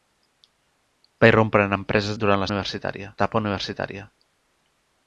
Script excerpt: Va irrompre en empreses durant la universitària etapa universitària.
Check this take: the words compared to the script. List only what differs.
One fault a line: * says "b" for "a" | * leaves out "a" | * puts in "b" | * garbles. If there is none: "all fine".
all fine